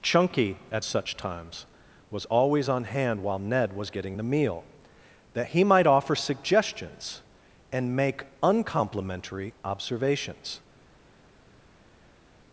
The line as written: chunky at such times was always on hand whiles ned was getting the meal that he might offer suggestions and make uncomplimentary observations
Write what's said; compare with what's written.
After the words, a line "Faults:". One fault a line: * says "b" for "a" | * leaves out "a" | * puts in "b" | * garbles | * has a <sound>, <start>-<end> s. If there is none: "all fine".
chunky at such times was always on hand while ned was getting the meal that he might offer suggestions and make uncomplimentary observations
Faults:
* says "while" for "whiles"